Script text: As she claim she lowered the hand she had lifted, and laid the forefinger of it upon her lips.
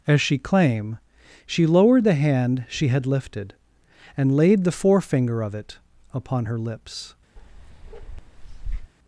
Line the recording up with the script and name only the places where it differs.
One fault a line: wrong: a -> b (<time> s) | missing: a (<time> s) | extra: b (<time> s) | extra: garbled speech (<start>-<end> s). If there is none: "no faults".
no faults